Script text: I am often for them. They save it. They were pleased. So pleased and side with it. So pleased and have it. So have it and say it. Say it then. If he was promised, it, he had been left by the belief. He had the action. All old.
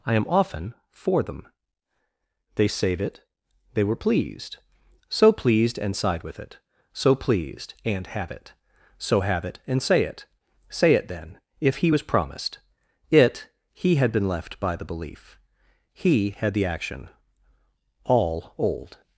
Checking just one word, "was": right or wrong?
right